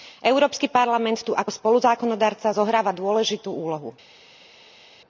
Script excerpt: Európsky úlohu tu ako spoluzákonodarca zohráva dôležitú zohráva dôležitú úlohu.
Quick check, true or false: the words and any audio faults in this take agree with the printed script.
false